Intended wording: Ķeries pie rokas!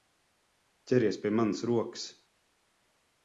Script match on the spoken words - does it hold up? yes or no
no